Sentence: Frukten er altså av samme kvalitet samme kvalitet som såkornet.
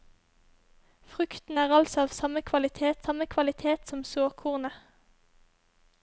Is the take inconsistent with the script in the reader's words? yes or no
no